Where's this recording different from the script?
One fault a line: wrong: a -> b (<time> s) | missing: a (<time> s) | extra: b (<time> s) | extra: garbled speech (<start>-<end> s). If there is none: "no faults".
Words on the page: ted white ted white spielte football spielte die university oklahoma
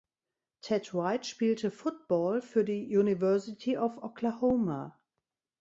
missing: ted white (1.2 s)
wrong: spielte -> für (2.4 s)
extra: of (3.8 s)